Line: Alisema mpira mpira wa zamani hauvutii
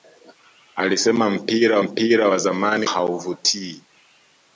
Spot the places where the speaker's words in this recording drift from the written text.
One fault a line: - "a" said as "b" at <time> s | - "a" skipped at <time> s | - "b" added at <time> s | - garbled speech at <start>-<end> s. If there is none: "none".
none